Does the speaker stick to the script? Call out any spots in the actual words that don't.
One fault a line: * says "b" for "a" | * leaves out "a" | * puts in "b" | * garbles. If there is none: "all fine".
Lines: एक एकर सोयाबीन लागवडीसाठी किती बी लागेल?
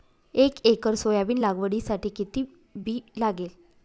all fine